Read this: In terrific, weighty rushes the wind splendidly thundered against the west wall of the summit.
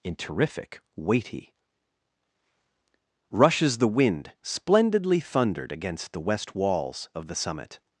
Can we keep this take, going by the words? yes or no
no